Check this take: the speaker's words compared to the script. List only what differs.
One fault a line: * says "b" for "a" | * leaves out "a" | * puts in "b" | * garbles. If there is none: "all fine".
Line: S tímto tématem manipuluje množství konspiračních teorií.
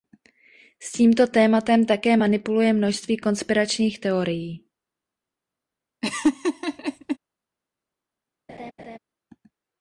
* puts in "také"